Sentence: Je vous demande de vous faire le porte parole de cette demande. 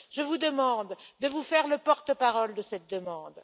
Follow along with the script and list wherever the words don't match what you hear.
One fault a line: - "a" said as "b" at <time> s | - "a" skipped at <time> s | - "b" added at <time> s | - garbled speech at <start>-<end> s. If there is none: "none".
none